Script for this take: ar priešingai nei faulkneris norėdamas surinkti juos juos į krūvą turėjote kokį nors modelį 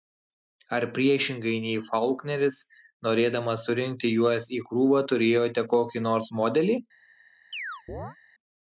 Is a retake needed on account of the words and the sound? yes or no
yes